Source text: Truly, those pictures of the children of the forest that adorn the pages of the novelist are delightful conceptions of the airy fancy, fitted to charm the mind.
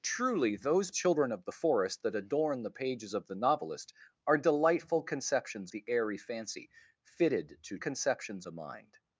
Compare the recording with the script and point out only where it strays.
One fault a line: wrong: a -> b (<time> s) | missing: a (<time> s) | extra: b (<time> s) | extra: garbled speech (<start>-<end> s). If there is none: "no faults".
missing: pictures of the (0.9 s)
missing: of (5.7 s)
wrong: charm -> conceptions (7.8 s)